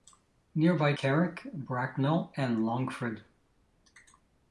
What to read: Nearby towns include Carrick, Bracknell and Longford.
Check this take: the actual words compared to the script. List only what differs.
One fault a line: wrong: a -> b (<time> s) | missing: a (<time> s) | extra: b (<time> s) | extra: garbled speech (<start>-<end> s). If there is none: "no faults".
missing: towns include (0.9 s)